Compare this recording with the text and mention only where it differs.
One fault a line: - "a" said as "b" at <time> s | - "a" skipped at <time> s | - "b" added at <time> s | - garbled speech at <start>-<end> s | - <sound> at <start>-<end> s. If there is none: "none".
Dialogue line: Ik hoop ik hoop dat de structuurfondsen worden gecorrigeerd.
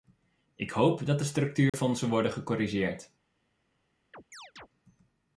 - "ik hoop" skipped at 1.1 s
- dropout at 1.7-1.7 s
- chirp at 4.1-4.7 s